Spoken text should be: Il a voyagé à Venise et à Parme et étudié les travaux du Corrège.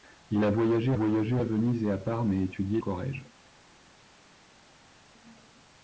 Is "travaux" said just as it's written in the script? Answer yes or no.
no